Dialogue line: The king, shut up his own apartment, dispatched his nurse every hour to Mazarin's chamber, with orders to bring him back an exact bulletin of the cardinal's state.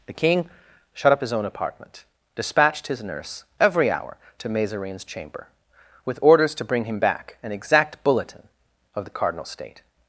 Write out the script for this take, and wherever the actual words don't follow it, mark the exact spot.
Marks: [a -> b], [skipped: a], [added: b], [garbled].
The king, shut up his own apartment, dispatched his nurse every hour to Mazarin's chamber, with orders to bring him back an exact bulletin of the cardinal's state.